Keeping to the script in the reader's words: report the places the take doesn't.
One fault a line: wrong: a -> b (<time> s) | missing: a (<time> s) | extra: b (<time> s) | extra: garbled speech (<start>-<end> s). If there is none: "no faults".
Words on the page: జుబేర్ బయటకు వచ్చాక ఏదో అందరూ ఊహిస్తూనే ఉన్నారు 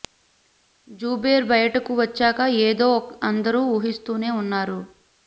no faults